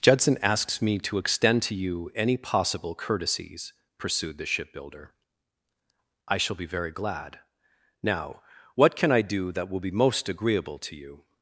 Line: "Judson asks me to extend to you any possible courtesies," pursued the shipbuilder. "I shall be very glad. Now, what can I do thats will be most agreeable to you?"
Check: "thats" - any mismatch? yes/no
yes